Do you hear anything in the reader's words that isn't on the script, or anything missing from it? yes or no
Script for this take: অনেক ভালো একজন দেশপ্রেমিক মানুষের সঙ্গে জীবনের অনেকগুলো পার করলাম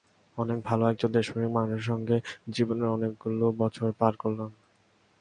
yes